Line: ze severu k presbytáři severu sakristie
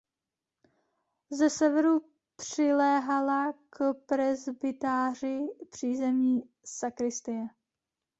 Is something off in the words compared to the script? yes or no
yes